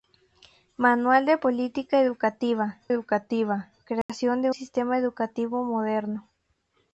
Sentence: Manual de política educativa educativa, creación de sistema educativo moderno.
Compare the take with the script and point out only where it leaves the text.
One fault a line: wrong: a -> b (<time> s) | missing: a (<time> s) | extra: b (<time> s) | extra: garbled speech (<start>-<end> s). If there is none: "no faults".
no faults